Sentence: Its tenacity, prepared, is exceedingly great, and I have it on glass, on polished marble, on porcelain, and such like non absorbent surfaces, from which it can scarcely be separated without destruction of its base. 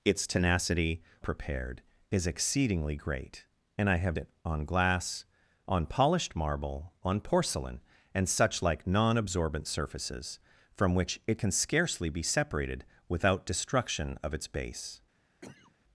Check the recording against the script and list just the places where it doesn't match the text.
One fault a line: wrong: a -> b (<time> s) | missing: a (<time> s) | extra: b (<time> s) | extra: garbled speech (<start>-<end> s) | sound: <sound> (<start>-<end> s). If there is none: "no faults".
sound: cough (15.4-15.8 s)